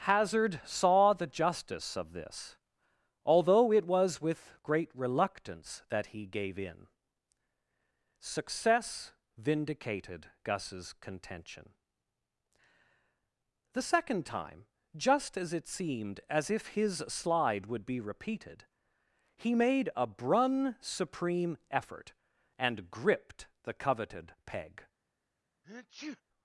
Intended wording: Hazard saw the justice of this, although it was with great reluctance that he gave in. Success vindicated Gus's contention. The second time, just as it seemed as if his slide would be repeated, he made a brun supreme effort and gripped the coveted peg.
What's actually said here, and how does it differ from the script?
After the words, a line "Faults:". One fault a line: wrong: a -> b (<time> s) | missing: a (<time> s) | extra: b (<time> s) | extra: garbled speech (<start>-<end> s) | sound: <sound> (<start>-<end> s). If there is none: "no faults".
Hazard saw the justice of this, although it was with great reluctance that he gave in. Success vindicated Gus's contention. The second time, just as it seemed as if his slide would be repeated, he made a brun supreme effort and gripped the coveted peg.
Faults:
sound: sneeze (25.6-26.2 s)